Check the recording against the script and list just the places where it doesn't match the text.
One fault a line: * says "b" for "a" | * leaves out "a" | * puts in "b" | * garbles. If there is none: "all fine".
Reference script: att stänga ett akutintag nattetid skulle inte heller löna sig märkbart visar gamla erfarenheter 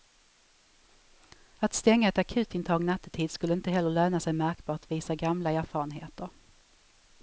all fine